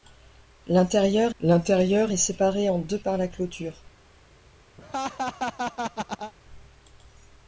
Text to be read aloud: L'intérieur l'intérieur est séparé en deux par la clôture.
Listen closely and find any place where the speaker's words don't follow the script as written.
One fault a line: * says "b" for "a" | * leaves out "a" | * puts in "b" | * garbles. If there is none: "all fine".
all fine